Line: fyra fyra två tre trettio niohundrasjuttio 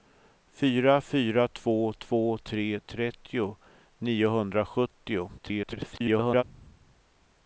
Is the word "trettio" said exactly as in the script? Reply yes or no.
yes